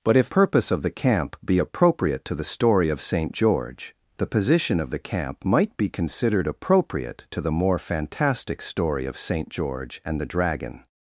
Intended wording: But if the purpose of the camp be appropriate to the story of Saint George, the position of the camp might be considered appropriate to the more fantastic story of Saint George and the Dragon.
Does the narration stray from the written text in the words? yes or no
yes